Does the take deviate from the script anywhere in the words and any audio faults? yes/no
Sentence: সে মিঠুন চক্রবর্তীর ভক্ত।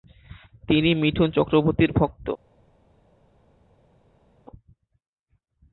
yes